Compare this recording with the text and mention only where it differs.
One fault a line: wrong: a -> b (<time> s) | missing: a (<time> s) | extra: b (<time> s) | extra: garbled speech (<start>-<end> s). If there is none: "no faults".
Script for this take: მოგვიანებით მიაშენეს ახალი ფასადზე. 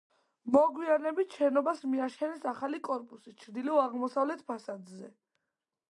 extra: შენობას (1.4 s)
extra: კორპუსი ჩრდილო აღმოსავლეთ (2.9 s)